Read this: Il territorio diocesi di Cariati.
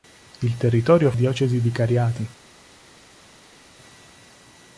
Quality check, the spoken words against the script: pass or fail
pass